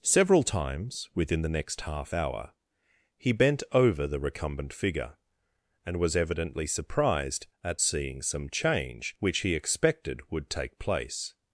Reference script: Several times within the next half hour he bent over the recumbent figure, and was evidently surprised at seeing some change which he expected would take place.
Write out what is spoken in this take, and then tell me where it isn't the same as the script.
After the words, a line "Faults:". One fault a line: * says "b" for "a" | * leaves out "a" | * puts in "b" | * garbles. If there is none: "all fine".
Several times within the next half hour he bent over the recumbent figure, and was evidently surprised at seeing some change which he expected would take place.
Faults:
all fine